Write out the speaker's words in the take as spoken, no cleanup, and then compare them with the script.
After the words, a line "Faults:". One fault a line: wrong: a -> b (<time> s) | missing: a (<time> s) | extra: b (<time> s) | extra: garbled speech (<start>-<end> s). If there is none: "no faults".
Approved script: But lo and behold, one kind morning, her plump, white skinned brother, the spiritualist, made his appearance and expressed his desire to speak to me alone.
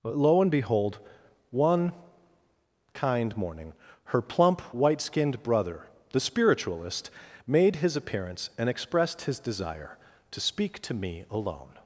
But lo and behold, one kind morning, her plump, white skinned brother, the spiritualist, made his appearance and expressed his desire to speak to me alone.
Faults:
no faults